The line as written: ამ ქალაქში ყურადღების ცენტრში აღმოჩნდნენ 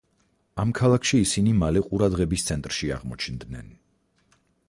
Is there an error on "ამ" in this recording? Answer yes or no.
no